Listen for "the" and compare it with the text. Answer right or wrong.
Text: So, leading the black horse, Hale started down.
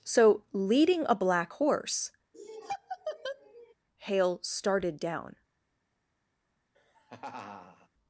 wrong